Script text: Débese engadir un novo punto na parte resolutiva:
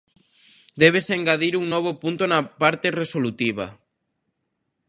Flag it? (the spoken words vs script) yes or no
no